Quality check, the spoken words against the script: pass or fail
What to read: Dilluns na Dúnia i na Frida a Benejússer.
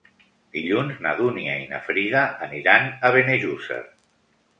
fail